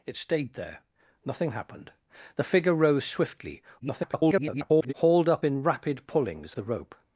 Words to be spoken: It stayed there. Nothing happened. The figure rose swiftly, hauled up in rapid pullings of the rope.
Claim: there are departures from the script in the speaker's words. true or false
true